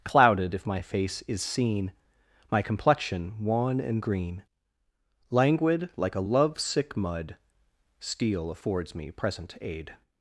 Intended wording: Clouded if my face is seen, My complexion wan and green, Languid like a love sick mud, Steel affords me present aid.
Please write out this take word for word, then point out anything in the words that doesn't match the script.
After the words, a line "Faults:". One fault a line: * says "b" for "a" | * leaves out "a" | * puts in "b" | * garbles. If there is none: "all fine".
Clouded if my face is seen, My complexion wan and green, Languid like a love sick mud, Steel affords me present aid.
Faults:
all fine